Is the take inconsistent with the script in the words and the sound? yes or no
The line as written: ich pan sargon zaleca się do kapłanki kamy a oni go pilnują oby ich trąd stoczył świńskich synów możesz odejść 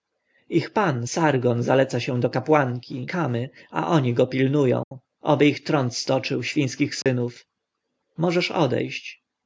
yes